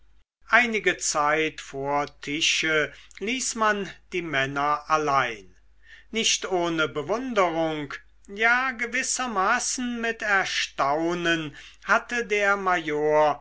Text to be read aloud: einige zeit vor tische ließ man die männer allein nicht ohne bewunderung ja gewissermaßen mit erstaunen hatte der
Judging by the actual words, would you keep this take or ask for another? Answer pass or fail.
pass